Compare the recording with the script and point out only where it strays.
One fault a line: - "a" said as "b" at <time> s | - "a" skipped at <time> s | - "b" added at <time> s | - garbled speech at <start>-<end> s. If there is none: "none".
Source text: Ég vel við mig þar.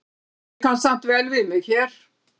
- "kann samt" added at 0.6 s
- "þar" said as "hér" at 1.7 s